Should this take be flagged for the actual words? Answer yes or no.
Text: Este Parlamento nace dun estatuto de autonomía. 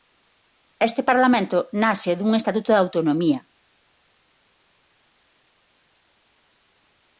no